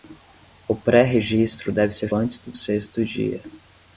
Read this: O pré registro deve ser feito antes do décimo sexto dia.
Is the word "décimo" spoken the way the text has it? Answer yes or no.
no